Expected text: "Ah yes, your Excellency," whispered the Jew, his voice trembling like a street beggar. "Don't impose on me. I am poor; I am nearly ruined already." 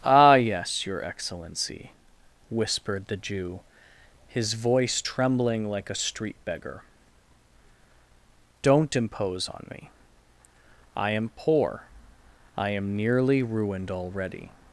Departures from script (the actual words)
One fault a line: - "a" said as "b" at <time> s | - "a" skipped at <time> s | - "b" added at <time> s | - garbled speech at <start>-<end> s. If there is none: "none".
none